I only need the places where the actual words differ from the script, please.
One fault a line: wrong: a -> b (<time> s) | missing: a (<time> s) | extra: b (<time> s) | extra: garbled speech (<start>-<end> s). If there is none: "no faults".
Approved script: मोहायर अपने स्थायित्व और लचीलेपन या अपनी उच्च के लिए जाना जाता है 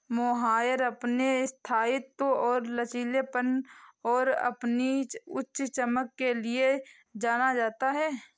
wrong: या -> और (4.0 s)
extra: चमक (5.6 s)